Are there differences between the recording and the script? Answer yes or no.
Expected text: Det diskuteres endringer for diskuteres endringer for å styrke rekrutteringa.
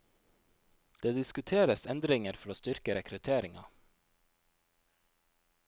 yes